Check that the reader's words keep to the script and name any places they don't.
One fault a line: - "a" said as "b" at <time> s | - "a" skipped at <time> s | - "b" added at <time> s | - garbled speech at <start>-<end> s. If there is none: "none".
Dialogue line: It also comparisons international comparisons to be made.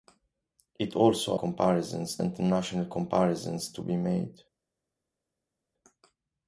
none